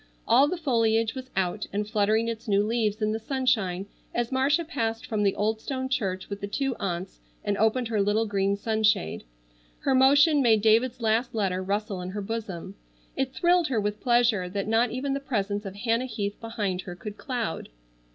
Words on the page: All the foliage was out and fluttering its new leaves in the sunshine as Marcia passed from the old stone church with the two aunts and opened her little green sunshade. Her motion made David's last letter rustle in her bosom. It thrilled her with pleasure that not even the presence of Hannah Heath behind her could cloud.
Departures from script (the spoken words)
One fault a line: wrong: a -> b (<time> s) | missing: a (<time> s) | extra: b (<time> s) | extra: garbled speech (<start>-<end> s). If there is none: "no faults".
no faults